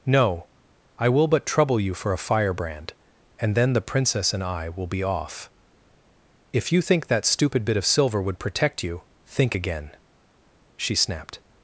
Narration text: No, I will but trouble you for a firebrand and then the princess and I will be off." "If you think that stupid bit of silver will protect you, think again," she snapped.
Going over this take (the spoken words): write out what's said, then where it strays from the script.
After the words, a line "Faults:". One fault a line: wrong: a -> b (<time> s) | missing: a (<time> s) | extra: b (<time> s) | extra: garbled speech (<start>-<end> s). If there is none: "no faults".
No, I will but trouble you for a firebrand and then the princess and I will be off." "If you think that stupid bit of silver would protect you, think again," she snapped.
Faults:
wrong: will -> would (8.2 s)